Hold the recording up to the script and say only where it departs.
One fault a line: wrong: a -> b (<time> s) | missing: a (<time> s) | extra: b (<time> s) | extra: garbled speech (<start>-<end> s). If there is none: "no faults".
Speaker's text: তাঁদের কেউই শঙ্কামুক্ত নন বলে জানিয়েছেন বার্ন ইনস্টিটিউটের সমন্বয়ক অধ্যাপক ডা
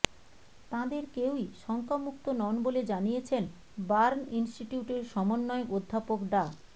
no faults